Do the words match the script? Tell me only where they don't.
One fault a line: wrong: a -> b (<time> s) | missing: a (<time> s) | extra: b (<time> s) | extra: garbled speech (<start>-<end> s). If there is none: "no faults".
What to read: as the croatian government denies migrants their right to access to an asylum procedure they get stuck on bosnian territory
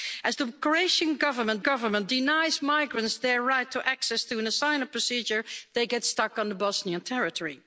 extra: government (1.6 s)